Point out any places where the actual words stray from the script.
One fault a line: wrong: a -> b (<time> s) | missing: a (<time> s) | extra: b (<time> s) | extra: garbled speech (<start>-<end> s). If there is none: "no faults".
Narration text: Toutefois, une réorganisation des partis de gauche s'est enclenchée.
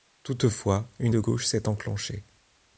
missing: réorganisation des partis (1.1 s)